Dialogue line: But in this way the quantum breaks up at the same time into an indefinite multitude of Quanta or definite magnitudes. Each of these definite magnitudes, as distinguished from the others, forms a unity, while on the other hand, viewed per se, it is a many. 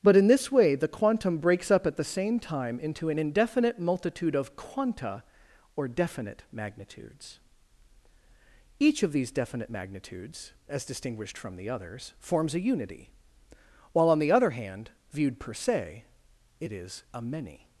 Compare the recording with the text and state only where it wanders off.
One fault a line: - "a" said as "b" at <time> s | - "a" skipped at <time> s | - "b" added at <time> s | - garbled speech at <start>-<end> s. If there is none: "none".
none